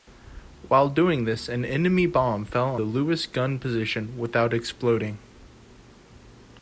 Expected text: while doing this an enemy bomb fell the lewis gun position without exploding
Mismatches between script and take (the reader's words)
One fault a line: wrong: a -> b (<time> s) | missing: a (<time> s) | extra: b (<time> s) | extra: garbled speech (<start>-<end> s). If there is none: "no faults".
no faults